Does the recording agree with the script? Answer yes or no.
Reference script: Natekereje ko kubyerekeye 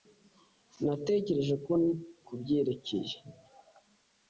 yes